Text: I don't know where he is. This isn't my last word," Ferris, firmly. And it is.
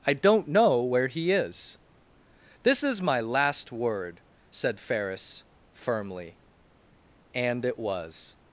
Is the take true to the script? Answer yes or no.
no